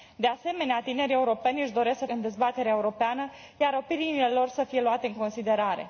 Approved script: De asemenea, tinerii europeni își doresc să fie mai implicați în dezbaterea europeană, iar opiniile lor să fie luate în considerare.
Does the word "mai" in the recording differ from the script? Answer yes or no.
yes